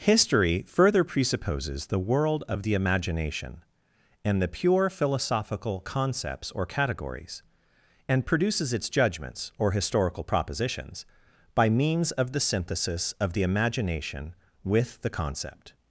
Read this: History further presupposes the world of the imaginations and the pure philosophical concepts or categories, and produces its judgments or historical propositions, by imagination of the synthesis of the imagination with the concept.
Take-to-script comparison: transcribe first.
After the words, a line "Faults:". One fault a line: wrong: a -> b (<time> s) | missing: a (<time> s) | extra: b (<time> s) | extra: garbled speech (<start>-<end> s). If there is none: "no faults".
History further presupposes the world of the imagination and the pure philosophical concepts or categories, and produces its judgments or historical propositions, by means of the synthesis of the imagination with the concept.
Faults:
wrong: imaginations -> imagination (2.7 s)
wrong: imagination -> means (11.7 s)